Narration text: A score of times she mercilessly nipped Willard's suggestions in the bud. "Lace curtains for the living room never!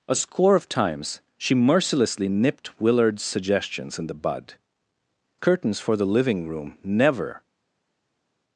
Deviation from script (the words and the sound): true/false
true